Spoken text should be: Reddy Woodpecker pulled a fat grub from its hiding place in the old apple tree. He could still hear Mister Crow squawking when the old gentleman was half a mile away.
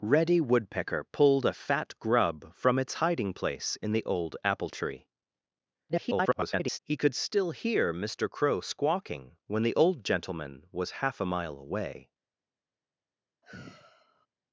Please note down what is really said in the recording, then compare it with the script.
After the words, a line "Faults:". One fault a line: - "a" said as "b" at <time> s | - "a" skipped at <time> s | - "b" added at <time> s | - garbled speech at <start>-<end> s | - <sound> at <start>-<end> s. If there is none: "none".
Reddy Woodpecker pulled a fat grub from its hiding place in the old apple tree. [garbled] He could still hear Mister Crow squawking when the old gentleman was half a mile away.
Faults:
- garbled speech at 5.9-6.8 s
- sigh at 13.4-14.3 s